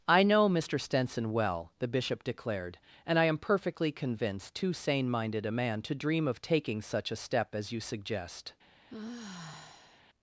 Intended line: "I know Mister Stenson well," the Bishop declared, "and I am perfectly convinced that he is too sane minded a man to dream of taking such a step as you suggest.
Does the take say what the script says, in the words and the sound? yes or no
no